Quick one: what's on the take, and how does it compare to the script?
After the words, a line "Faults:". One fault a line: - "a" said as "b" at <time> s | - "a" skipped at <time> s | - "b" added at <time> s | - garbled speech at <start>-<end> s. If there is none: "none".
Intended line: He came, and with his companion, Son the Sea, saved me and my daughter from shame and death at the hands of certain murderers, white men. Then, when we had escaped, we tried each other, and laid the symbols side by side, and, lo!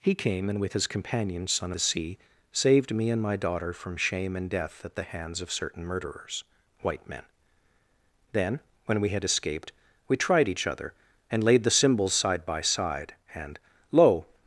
He came, and with his companion, Son the Sea, saved me and my daughter from shame and death at the hands of certain murderers, white men. Then, when we had escaped, we tried each other, and laid the symbols side by side, and, lo!
Faults:
none